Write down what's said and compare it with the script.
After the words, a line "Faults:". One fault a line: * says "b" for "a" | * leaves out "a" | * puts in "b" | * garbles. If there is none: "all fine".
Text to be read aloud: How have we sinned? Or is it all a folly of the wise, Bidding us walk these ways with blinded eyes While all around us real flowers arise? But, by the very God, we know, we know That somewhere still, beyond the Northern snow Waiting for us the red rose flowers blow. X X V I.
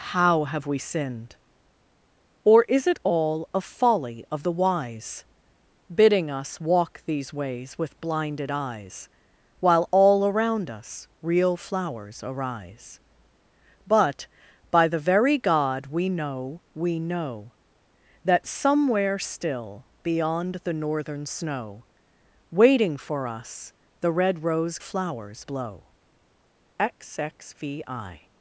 How have we sinned? Or is it all a folly of the wise, Bidding us walk these ways with blinded eyes While all around us real flowers arise? But, by the very God, we know, we know That somewhere still, beyond the Northern snow Waiting for us the red rose flowers blow. X X V I.
Faults:
all fine